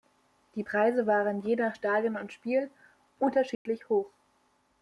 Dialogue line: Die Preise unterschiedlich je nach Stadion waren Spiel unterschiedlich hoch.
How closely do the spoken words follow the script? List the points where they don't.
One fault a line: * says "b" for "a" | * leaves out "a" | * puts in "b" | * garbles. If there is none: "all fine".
* says "waren" for "unterschiedlich"
* says "und" for "waren"